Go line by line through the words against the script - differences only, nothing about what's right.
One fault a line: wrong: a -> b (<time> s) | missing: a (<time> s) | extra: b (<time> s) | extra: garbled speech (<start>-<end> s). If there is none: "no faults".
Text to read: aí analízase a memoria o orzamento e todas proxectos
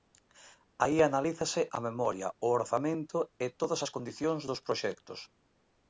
extra: as condicións dos (3.8 s)